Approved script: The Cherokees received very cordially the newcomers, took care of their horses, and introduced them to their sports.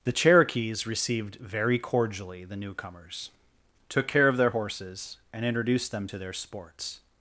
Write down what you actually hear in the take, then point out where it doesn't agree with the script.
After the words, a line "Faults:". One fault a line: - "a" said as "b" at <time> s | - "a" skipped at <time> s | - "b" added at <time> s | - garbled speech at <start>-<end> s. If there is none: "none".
The Cherokees received very cordially the newcomers, took care of their horses, and introduced them to their sports.
Faults:
none